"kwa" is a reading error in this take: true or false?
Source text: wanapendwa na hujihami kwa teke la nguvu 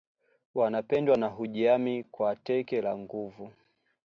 false